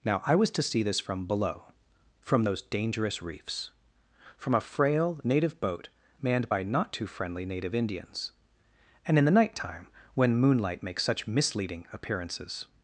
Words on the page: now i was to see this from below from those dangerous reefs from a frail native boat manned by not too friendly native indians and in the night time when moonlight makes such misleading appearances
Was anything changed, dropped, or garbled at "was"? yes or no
no